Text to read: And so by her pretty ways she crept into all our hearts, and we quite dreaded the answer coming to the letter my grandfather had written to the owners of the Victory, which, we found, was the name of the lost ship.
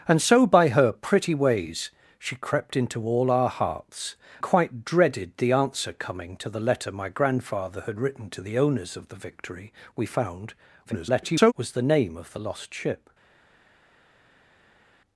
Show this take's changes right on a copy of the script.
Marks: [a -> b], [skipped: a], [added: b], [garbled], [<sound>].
And so by her pretty ways she crept into all our hearts, [skipped: and we] quite dreaded the answer coming to the letter my grandfather had written to the owners of the Victory, [skipped: which,] we found, [garbled] was the name of the lost ship.